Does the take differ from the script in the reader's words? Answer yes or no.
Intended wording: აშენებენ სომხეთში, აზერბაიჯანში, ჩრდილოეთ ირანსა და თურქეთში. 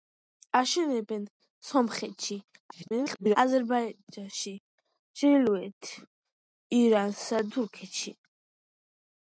yes